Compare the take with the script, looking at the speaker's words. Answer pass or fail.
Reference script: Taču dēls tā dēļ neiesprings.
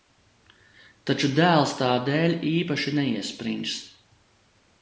fail